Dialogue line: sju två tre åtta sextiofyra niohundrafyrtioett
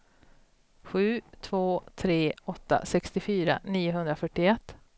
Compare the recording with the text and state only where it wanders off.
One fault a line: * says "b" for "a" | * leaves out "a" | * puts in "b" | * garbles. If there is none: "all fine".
all fine